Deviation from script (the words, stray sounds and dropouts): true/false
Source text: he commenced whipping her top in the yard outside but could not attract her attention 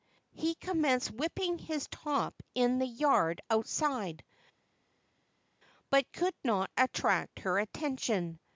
true